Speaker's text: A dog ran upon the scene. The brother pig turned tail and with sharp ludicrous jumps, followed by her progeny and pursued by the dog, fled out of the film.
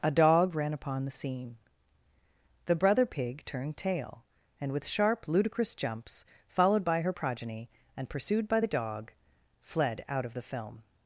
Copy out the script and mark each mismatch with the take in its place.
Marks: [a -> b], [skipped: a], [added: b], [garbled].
A dog ran upon the scene. The brother pig turned tail and with sharp ludicrous jumps, followed by her progeny and pursued by the dog, fled out of the film.